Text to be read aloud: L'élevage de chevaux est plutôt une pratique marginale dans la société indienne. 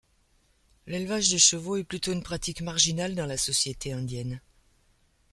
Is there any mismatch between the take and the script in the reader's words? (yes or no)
no